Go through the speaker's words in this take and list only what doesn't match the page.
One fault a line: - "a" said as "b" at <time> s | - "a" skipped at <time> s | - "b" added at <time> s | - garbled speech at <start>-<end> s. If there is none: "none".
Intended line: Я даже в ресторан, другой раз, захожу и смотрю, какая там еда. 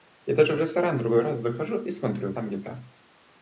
- "какая" skipped at 2.3 s